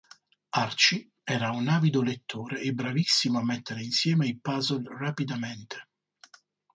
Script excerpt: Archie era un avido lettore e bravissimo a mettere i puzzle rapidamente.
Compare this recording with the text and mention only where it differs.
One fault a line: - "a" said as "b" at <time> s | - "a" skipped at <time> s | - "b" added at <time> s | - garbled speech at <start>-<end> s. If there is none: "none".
- "insieme" added at 3.8 s